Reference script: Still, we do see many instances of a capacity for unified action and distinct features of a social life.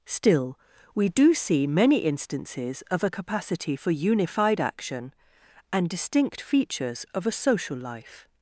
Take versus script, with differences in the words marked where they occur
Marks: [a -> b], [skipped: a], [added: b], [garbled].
Still, we do see many instances of a capacity for unified action and distinct features of a social life.